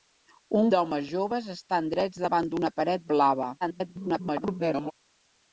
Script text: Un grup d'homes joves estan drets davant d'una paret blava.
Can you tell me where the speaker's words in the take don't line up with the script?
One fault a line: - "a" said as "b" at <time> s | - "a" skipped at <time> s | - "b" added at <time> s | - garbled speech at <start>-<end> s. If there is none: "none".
- "grup" skipped at 0.7 s
- garbled speech at 3.6-4.9 s